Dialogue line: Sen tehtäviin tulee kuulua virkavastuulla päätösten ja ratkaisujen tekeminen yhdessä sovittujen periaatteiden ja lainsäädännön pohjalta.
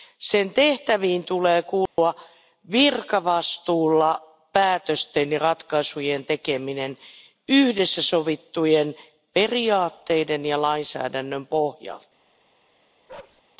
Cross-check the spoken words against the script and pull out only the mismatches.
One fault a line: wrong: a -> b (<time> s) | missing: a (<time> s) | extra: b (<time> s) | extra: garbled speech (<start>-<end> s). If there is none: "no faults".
no faults